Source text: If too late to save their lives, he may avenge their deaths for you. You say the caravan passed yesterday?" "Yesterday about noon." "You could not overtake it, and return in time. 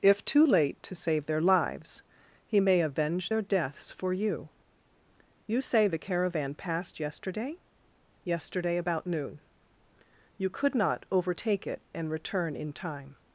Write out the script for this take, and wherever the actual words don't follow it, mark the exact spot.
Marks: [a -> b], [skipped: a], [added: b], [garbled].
If too late to save their lives, he may avenge their deaths for you. You say the caravan passed yesterday?" "Yesterday about noon." "You could not overtake it, and return in time.